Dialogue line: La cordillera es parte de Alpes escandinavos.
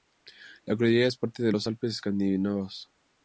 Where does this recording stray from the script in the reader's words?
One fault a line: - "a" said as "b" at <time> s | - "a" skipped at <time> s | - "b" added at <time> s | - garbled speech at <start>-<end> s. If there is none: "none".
- "los" added at 1.5 s